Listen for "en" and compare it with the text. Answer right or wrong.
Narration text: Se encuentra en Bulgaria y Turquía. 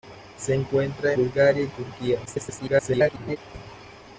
wrong